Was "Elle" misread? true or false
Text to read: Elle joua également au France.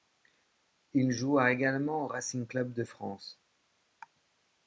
true